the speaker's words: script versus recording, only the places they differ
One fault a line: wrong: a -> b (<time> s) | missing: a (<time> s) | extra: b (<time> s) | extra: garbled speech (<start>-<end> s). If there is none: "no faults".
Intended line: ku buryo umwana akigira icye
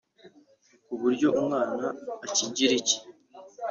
no faults